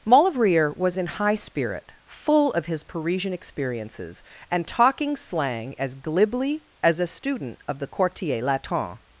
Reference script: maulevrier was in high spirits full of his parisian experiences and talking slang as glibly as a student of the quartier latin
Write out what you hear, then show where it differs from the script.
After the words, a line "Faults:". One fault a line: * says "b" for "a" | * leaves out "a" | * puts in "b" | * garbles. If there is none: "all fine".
maulevrier was in high spirit full of his parisian experiences and talking slang as glibly as a student of the quartier latin
Faults:
* says "spirit" for "spirits"